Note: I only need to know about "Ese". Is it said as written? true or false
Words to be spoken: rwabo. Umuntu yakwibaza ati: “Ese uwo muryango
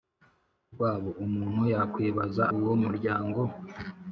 false